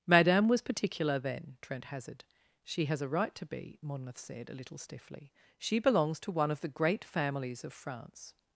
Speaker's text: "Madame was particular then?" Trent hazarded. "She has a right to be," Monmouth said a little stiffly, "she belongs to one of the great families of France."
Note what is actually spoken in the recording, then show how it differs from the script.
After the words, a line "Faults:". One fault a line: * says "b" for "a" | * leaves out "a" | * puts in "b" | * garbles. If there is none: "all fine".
"Madame was particular then?" Trent hazarded. "She has a right to be," Monmouth said a little stiffly, "she belongs to one of the great families of France."
Faults:
all fine